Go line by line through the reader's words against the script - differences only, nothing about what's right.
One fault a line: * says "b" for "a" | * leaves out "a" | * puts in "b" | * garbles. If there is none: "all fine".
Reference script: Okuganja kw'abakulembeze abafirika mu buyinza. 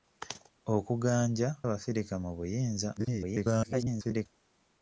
* leaves out "kw'abakulembeze"
* garbles